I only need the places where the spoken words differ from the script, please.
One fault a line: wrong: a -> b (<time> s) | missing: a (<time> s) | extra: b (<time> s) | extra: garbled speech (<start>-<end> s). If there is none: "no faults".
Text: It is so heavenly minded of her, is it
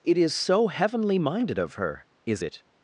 no faults